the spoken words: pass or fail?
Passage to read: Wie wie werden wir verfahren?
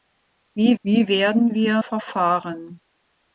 pass